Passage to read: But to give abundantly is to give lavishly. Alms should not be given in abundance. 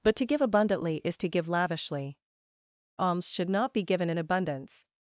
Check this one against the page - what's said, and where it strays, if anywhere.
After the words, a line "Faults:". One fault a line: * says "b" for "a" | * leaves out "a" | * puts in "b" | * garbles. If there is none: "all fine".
But to give abundantly is to give lavishly. Alms should not be given in abundance.
Faults:
all fine